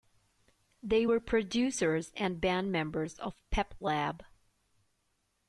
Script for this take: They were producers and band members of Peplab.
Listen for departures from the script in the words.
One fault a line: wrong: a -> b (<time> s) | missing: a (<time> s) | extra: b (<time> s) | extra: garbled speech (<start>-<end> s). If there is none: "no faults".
no faults